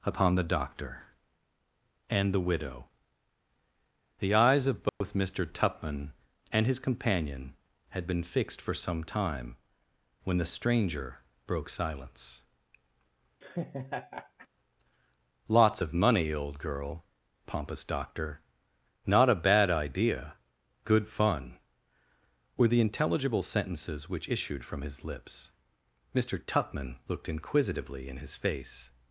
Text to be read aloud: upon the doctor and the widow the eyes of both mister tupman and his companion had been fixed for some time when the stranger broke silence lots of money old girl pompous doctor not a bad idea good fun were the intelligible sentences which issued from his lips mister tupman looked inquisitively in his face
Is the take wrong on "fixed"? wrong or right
right